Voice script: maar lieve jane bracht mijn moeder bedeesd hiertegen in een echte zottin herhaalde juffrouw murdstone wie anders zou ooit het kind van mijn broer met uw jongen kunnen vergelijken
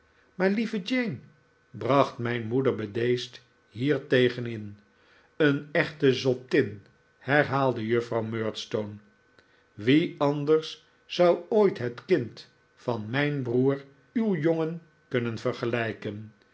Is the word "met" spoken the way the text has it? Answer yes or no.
no